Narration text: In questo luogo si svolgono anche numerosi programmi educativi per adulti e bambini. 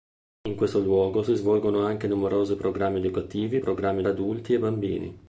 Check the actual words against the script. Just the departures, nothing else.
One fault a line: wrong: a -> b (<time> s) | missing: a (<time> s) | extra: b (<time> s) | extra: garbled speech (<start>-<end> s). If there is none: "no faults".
wrong: per -> programmi (3.6 s)